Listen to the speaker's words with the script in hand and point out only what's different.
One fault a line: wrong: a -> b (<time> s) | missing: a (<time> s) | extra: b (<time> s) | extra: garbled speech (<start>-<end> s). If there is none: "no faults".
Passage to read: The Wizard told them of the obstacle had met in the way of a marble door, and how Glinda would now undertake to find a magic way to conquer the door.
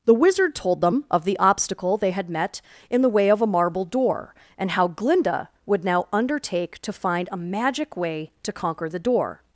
extra: they (1.9 s)